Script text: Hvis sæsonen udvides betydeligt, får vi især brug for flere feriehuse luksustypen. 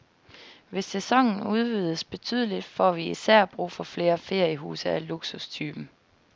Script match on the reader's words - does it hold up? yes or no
no